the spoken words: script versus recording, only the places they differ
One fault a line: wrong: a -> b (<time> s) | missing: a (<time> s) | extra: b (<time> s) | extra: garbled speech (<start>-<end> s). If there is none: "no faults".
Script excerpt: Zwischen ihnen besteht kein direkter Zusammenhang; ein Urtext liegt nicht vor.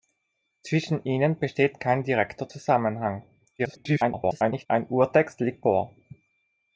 extra: garbled speech (3.6-4.7 s)
missing: nicht (5.7 s)